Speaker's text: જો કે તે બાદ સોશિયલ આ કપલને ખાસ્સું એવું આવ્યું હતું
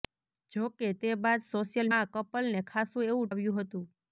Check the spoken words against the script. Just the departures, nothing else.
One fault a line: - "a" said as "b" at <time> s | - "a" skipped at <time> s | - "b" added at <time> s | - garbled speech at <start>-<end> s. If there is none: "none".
none